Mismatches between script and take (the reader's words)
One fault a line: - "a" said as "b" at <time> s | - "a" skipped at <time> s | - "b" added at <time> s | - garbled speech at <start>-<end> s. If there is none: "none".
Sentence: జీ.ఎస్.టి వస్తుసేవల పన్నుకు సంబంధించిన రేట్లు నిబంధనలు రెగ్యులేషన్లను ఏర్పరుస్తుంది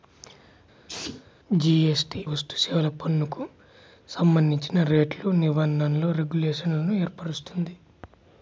none